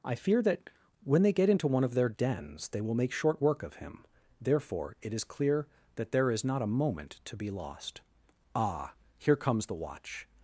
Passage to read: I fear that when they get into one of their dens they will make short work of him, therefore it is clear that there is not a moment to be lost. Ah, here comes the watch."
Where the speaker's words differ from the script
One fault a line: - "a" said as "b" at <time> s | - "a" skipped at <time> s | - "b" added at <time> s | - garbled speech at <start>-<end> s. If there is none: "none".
none